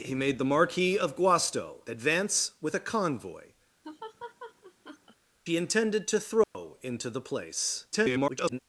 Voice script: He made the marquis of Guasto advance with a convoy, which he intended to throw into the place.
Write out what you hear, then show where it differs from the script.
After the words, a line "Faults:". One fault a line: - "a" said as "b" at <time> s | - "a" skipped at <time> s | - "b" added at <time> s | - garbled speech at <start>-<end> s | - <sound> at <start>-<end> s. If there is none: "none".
He made the marquis of Guasto advance with a convoy, he intended to throw into the place. [garbled]
Faults:
- "which" skipped at 3.5 s
- laugh at 3.8-5.2 s
- dropout at 6.4-6.5 s
- garbled speech at 7.9-8.6 s